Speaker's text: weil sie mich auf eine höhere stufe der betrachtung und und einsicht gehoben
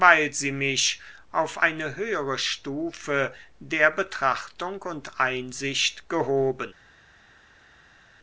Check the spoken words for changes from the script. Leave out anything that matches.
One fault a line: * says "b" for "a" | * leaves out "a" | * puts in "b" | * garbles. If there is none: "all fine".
* leaves out "und"